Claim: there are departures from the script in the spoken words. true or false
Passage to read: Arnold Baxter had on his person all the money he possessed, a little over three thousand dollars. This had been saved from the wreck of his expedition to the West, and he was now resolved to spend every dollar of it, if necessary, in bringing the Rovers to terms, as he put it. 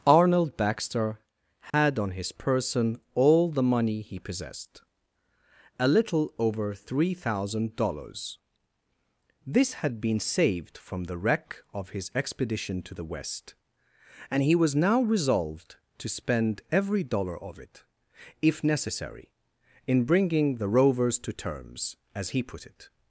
false